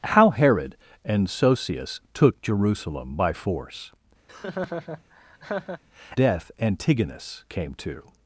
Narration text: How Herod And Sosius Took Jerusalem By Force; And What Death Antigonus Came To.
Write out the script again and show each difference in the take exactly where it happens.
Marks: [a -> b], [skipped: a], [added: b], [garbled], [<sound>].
How Herod And Sosius Took Jerusalem By Force; [skipped: And What] [laugh] Death Antigonus Came To.